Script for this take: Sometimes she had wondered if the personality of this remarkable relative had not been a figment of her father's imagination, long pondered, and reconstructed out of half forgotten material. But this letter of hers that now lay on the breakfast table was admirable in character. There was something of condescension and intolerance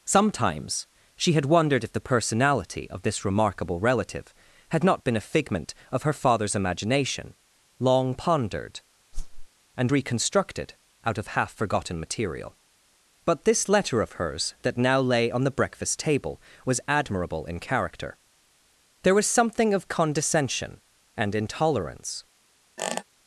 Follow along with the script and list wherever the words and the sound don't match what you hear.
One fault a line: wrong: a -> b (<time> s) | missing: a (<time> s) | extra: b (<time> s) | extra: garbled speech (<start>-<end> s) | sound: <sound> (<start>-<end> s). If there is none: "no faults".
sound: whoosh (9.1-9.5 s)
sound: squeak (22.8-23.0 s)